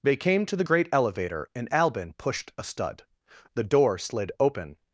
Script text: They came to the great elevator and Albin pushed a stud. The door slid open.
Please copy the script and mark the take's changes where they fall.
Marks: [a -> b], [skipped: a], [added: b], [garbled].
They came to the great elevator and Albin pushed a stud. The door slid open.